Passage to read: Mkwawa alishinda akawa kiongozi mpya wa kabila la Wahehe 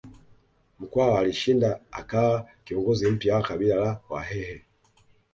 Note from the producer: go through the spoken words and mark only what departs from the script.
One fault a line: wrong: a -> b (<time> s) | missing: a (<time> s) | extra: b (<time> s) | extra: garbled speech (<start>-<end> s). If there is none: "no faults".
no faults